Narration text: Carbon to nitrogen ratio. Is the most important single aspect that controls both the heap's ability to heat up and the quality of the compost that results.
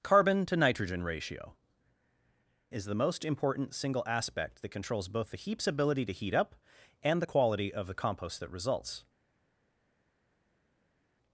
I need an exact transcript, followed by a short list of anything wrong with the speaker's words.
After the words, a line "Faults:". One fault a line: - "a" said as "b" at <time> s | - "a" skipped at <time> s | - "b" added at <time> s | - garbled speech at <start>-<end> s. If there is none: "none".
Carbon to nitrogen ratio. Is the most important single aspect that controls both the heap's ability to heat up and the quality of the compost that results.
Faults:
none